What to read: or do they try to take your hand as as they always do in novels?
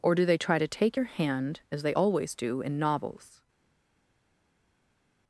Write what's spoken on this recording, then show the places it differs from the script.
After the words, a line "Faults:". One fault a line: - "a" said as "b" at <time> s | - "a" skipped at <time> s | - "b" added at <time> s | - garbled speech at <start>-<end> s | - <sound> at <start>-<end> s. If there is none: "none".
or do they try to take your hand as they always do in novels?
Faults:
- "as" skipped at 1.8 s